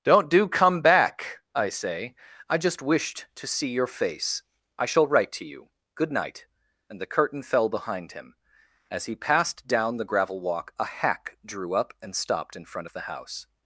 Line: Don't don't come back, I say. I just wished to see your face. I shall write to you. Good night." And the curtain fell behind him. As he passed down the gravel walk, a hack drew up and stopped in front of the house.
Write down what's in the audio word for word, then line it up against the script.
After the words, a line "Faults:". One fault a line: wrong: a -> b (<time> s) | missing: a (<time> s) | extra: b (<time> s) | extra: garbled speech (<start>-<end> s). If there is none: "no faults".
Don't do come back, I say. I just wished to see your face. I shall write to you. Good night." And the curtain fell behind him. As he passed down the gravel walk, a hack drew up and stopped in front of the house.
Faults:
wrong: don't -> do (0.3 s)